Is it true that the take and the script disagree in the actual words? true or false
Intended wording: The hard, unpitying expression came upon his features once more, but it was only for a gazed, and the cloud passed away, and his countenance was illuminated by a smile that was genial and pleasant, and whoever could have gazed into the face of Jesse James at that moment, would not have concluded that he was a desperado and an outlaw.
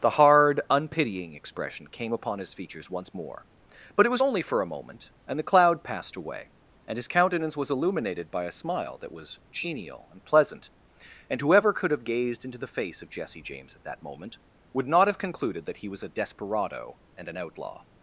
true